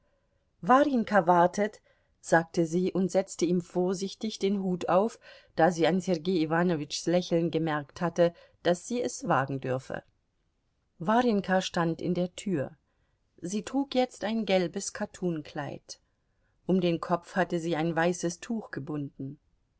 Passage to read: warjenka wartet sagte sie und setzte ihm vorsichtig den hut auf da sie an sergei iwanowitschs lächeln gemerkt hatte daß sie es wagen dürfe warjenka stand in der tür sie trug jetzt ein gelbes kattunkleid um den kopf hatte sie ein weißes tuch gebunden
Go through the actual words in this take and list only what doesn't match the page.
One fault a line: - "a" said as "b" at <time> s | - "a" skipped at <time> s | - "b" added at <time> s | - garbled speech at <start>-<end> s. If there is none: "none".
none